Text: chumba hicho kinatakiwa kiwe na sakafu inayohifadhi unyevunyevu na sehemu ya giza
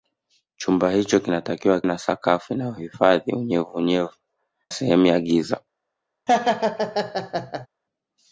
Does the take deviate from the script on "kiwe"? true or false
true